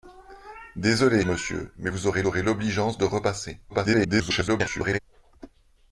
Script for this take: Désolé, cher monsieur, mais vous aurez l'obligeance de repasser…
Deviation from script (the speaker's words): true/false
true